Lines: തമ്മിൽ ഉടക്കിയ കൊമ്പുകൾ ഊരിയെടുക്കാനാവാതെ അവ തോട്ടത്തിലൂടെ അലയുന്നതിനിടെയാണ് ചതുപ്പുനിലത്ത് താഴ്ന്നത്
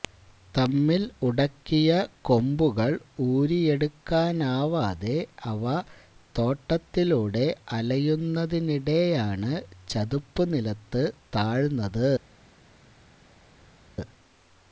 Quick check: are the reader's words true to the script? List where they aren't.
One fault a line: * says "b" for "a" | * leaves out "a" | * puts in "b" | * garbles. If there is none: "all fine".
all fine